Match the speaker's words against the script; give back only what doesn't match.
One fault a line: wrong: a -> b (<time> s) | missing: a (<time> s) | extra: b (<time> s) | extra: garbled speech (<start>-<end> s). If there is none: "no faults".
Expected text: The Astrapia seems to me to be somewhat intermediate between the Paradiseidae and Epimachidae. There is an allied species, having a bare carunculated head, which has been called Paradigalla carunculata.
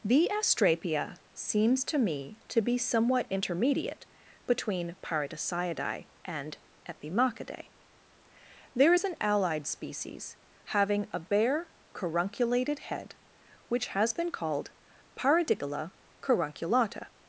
missing: the (5.0 s)